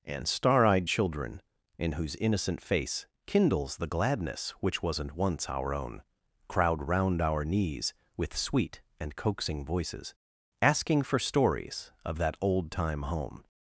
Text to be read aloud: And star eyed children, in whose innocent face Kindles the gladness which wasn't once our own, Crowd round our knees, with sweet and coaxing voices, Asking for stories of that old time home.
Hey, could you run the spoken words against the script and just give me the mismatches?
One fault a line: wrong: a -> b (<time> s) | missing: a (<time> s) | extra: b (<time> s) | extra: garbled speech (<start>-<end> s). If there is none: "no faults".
no faults